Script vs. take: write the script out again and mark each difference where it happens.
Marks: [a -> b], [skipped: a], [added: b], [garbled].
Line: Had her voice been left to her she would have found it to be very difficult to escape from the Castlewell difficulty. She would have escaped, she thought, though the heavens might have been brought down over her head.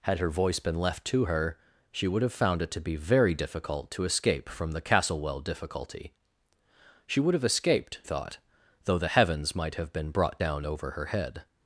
Had her voice been left to her she would have found it to be very difficult to escape from the Castlewell difficulty. She would have escaped, [skipped: she] thought, though the heavens might have been brought down over her head.